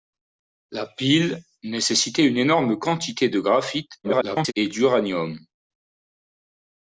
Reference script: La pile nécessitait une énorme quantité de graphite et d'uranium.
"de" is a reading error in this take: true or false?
false